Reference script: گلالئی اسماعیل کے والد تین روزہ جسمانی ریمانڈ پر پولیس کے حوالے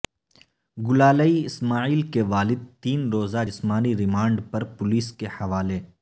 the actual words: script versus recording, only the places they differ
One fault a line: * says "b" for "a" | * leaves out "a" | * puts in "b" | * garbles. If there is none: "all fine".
all fine